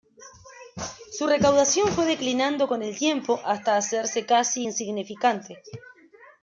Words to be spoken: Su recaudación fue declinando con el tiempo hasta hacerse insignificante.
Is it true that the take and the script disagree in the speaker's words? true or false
true